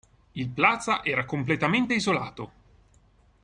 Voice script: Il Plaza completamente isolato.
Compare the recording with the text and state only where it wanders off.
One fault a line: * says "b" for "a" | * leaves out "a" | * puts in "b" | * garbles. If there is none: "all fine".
* puts in "era"